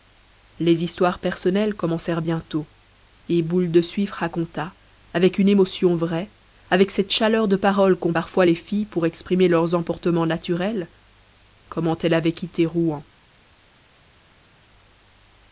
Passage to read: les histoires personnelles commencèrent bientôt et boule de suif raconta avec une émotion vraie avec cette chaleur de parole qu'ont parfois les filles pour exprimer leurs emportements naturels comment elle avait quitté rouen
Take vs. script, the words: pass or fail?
pass